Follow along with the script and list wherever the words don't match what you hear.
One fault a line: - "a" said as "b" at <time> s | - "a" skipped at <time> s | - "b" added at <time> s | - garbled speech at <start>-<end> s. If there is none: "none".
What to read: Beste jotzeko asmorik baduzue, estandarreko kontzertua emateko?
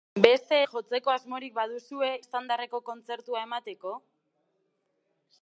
none